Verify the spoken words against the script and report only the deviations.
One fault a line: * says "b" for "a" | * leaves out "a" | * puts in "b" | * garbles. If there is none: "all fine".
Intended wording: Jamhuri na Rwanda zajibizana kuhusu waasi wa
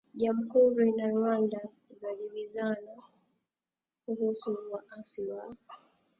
all fine